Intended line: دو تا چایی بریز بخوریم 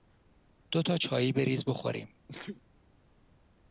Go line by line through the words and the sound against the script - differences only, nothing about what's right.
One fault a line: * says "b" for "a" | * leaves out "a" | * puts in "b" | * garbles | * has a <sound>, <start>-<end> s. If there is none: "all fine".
* has a sneeze, 2.3-2.6 s